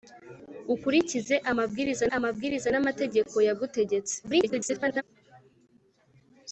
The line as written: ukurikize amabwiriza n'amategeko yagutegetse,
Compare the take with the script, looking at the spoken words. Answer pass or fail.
fail